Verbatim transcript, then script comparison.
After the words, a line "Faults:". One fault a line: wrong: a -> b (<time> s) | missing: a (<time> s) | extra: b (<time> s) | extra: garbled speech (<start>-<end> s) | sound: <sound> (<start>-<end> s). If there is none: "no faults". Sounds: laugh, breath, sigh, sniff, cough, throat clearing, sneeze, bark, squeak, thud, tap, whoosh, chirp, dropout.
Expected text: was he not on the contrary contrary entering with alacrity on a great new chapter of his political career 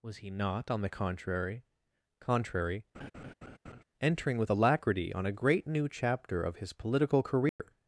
was he not on the contrary contrary entering with alacrity on a great new chapter of his political career
Faults:
sound: laugh (2.9-3.8 s)
sound: dropout (7.5-7.6 s)